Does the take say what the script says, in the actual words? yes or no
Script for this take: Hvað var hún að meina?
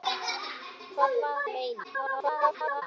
no